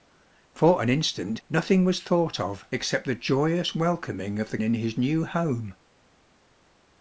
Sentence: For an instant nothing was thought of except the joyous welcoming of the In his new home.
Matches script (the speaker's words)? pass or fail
pass